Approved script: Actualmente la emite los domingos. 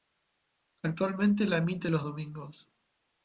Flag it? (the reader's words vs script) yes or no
no